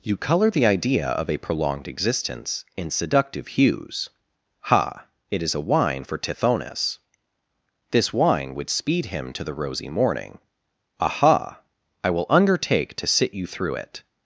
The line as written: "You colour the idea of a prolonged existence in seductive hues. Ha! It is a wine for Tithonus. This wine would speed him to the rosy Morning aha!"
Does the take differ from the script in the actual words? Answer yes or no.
yes